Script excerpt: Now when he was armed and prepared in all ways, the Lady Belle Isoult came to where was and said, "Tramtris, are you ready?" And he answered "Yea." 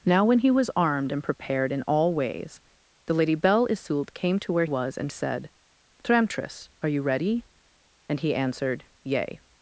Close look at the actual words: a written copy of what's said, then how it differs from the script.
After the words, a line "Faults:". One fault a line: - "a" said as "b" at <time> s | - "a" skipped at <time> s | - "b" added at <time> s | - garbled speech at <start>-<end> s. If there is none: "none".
Now when he was armed and prepared in all ways, the Lady Belle Isoult came to where was and said, "Tramtris, are you ready?" And he answered "Yea."
Faults:
none